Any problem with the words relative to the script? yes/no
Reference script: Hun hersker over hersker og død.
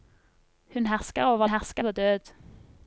no